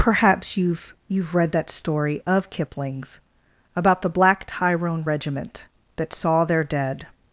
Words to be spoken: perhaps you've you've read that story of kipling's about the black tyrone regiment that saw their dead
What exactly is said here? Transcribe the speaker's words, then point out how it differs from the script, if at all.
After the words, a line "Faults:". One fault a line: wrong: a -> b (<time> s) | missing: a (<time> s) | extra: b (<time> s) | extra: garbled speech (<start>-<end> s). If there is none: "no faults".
perhaps you've you've read that story of kipling's about the black tyrone regiment that saw their dead
Faults:
no faults